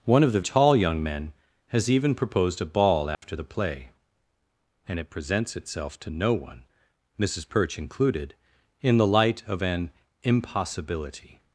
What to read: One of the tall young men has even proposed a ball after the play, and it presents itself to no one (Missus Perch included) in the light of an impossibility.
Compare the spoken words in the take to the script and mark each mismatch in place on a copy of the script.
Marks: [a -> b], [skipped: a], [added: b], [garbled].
One of the tall young men has even proposed a ball after the play, and it presents itself to no one (Missus Perch included) in the light of an impossibility.